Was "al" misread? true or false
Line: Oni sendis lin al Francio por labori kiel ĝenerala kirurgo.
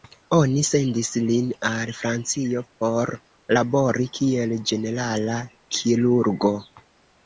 false